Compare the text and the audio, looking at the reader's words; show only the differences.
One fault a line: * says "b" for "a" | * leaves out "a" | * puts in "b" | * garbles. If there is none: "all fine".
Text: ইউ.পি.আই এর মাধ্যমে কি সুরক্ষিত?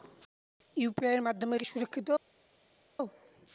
all fine